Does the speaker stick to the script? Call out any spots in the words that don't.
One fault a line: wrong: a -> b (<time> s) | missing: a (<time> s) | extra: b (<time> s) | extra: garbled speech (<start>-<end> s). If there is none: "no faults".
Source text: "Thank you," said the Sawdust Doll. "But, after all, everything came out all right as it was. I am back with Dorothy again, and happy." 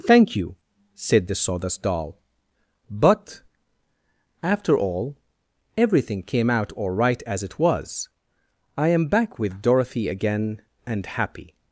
no faults